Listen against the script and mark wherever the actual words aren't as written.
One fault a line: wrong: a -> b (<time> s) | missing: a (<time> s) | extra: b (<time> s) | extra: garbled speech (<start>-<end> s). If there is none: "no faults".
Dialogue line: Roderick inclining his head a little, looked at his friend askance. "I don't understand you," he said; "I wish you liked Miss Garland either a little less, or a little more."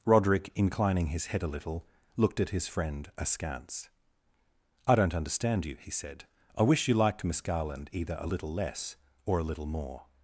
no faults